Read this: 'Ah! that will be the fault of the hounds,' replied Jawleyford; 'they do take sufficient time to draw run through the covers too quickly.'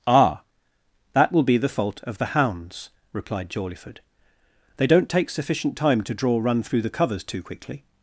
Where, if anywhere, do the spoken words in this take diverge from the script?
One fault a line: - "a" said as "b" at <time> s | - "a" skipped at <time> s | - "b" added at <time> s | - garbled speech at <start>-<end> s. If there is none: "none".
- "do" said as "don't" at 4.9 s